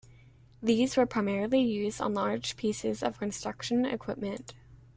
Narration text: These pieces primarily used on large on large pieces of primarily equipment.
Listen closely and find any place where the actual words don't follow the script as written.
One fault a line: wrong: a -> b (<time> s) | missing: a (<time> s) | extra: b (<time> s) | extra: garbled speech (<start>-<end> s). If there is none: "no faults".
wrong: pieces -> were (1.0 s)
missing: on large (2.6 s)
wrong: primarily -> construction (3.2 s)